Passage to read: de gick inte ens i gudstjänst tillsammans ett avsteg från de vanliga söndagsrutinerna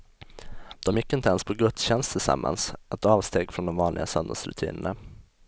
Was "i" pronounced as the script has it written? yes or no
no